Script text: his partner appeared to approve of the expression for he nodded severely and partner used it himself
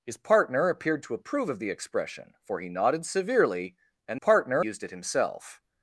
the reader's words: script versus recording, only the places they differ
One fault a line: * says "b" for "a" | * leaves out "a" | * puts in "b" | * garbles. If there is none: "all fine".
all fine